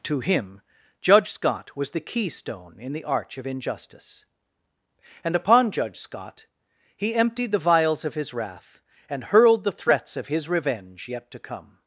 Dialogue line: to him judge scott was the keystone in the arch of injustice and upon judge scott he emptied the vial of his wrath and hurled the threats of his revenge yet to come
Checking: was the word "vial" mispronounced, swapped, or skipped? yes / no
yes